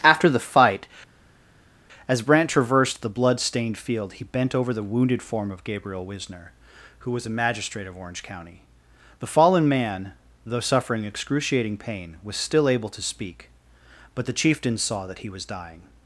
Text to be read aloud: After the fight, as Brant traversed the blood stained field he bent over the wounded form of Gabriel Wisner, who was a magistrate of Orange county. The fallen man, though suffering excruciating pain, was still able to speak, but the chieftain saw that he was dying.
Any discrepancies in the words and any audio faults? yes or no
no